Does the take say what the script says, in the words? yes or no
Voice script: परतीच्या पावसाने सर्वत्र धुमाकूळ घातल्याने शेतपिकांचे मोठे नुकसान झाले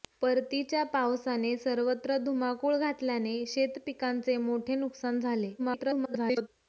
no